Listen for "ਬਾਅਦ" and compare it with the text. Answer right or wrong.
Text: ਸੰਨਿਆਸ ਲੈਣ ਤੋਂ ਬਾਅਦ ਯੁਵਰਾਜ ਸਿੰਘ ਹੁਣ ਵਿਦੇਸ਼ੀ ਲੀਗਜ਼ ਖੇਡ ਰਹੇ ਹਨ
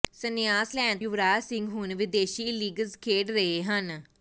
wrong